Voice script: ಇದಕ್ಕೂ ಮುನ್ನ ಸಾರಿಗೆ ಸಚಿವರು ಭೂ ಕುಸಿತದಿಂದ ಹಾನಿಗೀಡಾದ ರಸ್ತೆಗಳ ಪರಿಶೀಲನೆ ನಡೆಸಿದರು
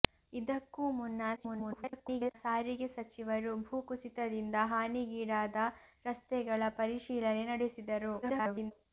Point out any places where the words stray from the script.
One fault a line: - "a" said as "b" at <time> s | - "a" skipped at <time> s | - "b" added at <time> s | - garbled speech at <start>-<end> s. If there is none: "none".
- garbled speech at 1.4-2.4 s
- garbled speech at 8.2-8.7 s